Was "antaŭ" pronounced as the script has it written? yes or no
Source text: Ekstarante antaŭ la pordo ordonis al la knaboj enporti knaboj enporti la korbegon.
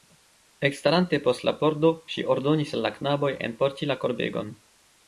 no